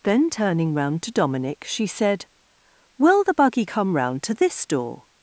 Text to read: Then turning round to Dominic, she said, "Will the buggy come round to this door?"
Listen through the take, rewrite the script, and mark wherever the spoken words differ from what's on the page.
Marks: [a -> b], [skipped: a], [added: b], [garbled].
Then turning round to Dominic, she said, "Will the buggy come round to this door?"